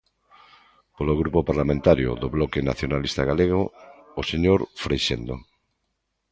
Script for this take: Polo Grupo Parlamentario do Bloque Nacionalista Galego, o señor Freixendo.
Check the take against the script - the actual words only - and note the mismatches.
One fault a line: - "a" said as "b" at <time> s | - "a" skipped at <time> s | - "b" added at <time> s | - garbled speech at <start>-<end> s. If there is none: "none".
none